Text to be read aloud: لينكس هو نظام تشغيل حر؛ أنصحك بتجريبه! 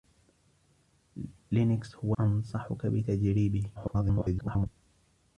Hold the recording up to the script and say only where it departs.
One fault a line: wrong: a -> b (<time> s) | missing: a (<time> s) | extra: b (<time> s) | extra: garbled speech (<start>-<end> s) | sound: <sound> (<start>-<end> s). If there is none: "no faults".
missing: نظام تشغيل حر (2.2 s)
extra: garbled speech (3.7-4.7 s)